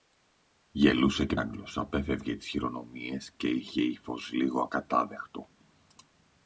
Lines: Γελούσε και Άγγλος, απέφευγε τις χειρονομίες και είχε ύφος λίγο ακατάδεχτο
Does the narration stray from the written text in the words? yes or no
no